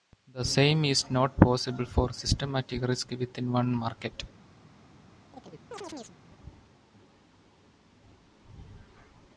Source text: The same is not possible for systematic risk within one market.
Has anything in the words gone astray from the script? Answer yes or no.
no